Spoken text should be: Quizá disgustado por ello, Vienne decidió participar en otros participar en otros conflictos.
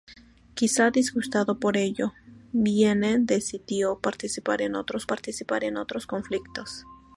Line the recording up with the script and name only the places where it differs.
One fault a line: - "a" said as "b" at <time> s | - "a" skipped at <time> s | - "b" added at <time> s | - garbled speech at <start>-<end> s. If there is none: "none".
none